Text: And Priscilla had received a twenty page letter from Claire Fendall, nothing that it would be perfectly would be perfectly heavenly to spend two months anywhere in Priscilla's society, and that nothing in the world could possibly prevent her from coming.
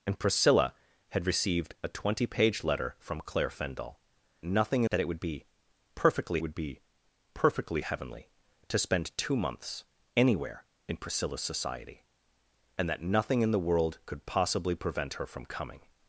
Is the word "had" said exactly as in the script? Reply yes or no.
yes